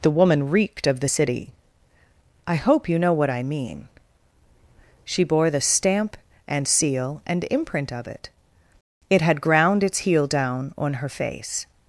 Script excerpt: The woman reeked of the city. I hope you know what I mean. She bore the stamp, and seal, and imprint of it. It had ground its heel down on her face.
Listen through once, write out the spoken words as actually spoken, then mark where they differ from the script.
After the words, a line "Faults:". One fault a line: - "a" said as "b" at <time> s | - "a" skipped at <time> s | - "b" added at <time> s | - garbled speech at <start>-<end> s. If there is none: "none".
The woman reeked of the city. I hope you know what I mean. She bore the stamp, and seal, and imprint of it. It had ground its heel down on her face.
Faults:
none